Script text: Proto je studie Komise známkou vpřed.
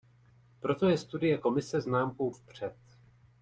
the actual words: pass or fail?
pass